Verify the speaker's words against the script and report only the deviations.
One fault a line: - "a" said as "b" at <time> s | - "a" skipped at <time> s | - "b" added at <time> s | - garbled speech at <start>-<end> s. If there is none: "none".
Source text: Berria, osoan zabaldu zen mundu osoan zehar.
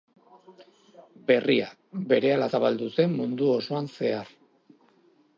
- "osoan" said as "berehala" at 2.1 s